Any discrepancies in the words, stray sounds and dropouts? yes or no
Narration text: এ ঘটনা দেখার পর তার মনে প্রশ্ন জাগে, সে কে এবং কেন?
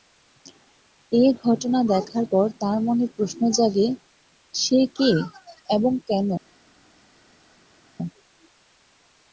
no